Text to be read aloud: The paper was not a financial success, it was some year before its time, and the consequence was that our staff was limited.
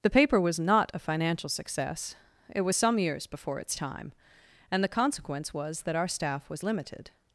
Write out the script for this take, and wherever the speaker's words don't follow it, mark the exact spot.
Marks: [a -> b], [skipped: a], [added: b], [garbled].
The paper was not a financial success, it was some [year -> years] before its time, and the consequence was that our staff was limited.